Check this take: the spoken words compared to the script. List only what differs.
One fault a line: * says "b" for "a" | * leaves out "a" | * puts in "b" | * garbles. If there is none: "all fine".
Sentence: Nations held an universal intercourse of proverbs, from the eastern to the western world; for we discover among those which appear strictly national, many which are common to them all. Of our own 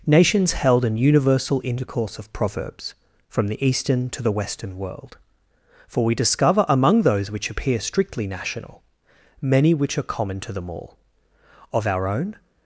all fine